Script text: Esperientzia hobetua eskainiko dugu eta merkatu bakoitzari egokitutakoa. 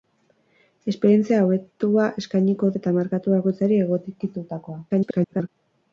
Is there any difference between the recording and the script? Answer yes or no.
yes